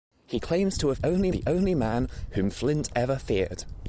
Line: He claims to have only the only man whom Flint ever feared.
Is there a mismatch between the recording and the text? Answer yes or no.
no